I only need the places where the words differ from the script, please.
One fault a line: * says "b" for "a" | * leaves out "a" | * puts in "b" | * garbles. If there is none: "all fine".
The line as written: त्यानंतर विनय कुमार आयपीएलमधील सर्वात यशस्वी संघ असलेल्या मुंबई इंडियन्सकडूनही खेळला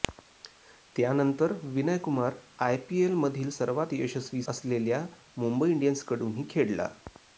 * leaves out "संघ"